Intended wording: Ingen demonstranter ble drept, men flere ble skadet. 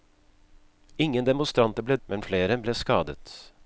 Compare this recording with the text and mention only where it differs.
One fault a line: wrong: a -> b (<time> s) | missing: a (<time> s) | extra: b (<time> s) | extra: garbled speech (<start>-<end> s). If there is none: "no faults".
missing: drept (2.0 s)